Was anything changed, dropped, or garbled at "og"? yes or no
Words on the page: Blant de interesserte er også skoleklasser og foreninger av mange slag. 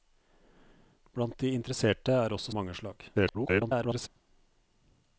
yes